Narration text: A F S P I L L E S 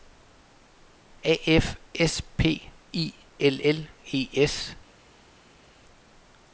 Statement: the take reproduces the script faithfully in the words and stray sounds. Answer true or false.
true